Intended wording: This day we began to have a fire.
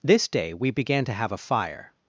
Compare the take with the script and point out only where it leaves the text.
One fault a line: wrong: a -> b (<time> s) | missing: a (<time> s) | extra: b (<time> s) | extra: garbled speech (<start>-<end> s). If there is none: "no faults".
no faults